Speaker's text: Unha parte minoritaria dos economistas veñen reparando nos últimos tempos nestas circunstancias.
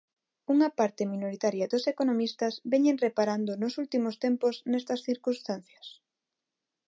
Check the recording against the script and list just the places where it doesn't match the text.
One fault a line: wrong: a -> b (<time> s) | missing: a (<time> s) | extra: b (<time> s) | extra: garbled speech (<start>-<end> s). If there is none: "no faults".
no faults